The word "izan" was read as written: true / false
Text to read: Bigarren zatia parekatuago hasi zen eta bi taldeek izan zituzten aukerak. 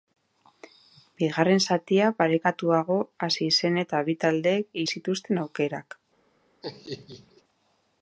false